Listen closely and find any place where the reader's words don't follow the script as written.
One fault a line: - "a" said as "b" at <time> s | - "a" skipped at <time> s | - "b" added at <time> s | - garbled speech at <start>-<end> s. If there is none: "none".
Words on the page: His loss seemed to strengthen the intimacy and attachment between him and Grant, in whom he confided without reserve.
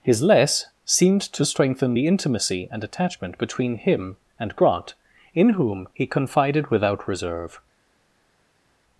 - "loss" said as "less" at 0.2 s